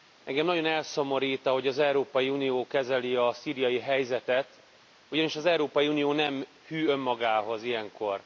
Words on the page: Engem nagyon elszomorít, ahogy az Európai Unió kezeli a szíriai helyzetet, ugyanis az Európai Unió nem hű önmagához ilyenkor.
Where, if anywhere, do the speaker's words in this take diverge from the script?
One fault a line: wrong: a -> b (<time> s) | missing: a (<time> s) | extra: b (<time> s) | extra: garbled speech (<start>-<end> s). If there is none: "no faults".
no faults